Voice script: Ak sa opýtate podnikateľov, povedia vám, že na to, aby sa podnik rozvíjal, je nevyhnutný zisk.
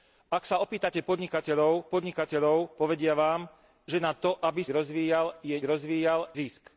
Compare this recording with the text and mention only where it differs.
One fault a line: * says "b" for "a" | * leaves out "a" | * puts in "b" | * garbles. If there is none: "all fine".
* puts in "podnikateľov"
* leaves out "sa podnik"
* says "rozvíjal" for "nevyhnutný"